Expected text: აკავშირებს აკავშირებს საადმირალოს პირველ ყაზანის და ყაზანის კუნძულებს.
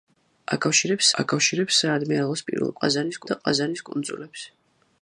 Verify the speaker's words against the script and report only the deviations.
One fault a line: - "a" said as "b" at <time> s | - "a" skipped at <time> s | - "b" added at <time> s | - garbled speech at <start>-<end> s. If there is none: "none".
none